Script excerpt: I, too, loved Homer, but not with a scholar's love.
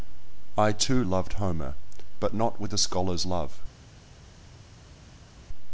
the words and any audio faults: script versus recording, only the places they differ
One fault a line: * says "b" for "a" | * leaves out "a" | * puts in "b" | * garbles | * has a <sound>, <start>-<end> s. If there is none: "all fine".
all fine